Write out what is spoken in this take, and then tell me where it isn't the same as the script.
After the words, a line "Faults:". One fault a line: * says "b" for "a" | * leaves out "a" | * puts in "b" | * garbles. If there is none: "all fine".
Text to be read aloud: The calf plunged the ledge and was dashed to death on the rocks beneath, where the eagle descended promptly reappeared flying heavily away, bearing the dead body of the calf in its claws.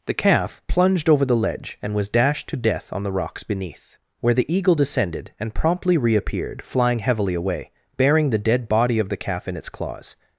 The calf plunged over the ledge and was dashed to death on the rocks beneath, where the eagle descended and promptly reappeared flying heavily away, bearing the dead body of the calf in its claws.
Faults:
* puts in "over"
* puts in "and"